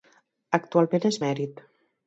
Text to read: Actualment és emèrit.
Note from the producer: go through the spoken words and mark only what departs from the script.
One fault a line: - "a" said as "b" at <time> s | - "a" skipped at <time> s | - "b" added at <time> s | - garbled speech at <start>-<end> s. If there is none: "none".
none